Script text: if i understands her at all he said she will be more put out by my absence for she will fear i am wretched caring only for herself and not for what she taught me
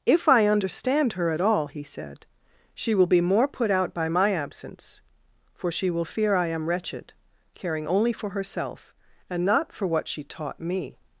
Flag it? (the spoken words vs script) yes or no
yes